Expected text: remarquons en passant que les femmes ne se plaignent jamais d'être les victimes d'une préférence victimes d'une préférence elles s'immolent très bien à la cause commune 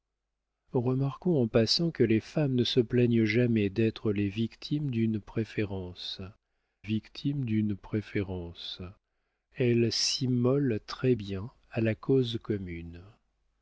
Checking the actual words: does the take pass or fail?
pass